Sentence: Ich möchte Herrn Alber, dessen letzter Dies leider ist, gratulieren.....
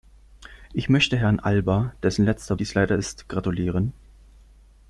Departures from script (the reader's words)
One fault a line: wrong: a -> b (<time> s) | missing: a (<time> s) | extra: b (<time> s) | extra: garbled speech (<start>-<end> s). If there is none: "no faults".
no faults